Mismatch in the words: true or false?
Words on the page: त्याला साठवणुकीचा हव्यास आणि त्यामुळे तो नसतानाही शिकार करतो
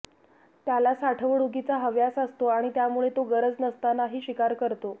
true